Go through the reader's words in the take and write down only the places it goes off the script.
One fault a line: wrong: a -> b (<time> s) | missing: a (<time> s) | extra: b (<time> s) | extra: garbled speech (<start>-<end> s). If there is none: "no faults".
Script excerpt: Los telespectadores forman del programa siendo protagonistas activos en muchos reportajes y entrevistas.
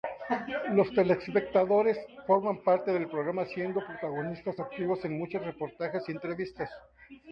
extra: parte (2.6 s)